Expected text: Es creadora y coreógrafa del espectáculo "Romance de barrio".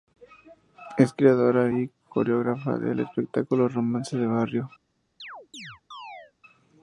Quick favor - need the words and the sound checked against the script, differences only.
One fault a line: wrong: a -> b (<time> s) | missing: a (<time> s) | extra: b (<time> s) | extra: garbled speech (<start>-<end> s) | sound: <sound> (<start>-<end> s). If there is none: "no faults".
sound: chirp (5.2-6.3 s)